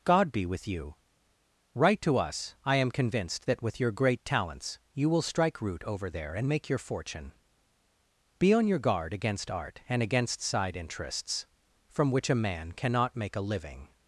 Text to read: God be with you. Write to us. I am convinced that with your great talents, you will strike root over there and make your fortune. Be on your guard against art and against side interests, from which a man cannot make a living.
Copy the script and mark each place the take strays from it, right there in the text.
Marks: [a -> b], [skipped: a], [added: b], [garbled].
God be with you. Write to us. I am convinced that with your great talents, you will strike root over there and make your fortune. Be on your guard against art and against side interests, from which a man cannot make a living.